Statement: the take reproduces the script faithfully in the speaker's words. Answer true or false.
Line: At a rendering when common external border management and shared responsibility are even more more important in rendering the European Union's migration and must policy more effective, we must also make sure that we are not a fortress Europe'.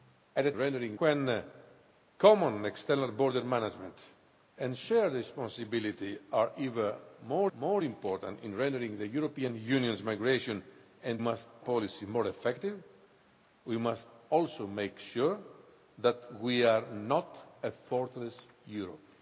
true